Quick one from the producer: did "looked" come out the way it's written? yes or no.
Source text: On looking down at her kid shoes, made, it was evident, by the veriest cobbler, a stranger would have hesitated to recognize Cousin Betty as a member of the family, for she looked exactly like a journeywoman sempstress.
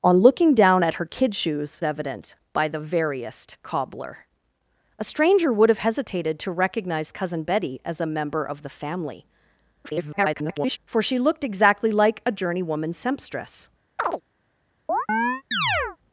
yes